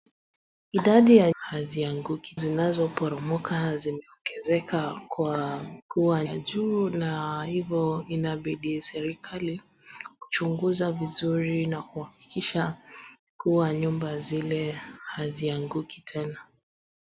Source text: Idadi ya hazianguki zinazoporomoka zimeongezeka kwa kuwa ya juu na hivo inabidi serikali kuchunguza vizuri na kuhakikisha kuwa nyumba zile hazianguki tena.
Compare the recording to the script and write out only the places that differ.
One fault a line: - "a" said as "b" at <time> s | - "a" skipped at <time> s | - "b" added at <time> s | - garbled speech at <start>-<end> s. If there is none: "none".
none